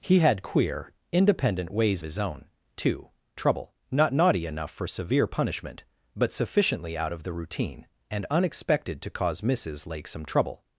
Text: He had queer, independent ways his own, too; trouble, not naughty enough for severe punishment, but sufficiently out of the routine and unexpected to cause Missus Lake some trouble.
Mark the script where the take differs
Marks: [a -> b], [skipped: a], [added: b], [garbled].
He had queer, independent ways his own, too; trouble, not naughty enough for severe punishment, but sufficiently out of the routine and unexpected to cause Missus Lake some trouble.